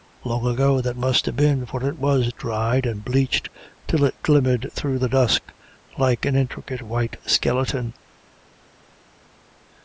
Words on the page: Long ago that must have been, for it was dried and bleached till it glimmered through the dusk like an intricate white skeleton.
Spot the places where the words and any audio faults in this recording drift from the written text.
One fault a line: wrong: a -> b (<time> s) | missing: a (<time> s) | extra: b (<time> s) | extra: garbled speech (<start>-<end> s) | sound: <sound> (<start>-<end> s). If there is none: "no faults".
no faults